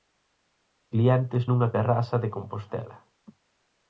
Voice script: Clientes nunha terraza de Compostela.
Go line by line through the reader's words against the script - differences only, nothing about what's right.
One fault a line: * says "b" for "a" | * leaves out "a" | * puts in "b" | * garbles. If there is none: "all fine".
all fine